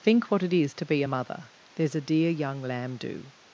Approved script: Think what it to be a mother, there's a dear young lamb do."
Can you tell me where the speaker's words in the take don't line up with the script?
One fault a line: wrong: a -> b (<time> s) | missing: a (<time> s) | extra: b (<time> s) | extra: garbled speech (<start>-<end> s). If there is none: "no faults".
extra: is (0.5 s)